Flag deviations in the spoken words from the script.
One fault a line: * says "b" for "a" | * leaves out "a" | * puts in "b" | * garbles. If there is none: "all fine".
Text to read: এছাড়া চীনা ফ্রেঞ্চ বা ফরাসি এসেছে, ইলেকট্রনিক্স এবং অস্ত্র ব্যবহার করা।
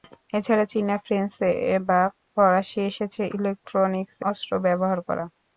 * leaves out "এবং"